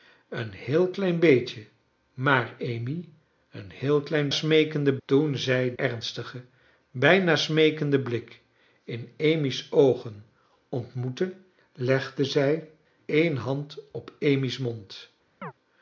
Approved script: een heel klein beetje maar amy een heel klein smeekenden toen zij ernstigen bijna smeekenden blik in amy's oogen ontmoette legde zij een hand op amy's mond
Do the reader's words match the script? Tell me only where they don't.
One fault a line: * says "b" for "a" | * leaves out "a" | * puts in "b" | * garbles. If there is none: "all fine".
all fine